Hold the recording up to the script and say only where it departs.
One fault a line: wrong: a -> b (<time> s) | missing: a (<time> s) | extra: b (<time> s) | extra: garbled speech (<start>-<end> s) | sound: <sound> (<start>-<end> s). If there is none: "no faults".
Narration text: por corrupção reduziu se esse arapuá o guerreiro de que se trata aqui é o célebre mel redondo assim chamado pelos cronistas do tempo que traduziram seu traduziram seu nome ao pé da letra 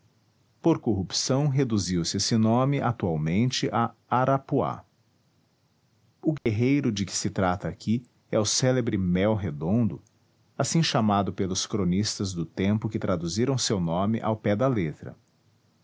extra: nome atualmente a (2.4 s)
sound: dropout (6.4-6.5 s)
missing: traduziram seu (13.8 s)